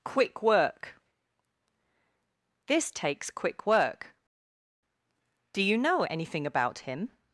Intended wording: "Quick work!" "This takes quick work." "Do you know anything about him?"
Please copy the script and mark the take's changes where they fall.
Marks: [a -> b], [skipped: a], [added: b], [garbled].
"Quick work!" "This takes quick work." "Do you know anything about him?"